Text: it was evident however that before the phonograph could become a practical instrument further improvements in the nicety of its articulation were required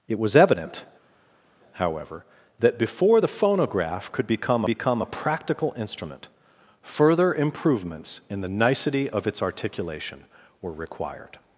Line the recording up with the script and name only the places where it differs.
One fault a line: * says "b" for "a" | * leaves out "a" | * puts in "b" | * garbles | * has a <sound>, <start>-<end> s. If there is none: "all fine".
* puts in "become"